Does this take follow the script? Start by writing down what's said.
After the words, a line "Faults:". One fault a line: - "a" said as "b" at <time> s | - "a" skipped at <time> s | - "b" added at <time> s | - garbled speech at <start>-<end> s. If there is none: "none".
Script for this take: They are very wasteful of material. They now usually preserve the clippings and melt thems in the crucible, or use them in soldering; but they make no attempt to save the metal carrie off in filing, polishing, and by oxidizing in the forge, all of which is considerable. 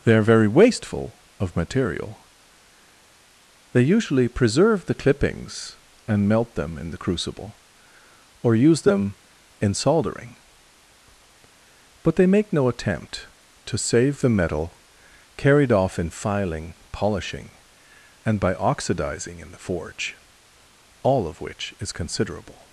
They are very wasteful of material. They usually preserve the clippings and melt them in the crucible, or use them in soldering; but they make no attempt to save the metal carried off in filing, polishing, and by oxidizing in the forge, all of which is considerable.
Faults:
- "now" skipped at 3.9 s
- "thems" said as "them" at 6.5 s
- "carrie" said as "carried" at 15.3 s